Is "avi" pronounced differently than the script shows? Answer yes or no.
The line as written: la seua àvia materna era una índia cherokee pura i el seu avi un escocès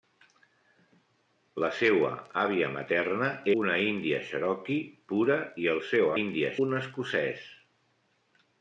yes